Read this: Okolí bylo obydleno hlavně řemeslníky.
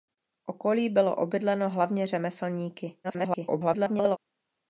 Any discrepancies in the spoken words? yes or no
yes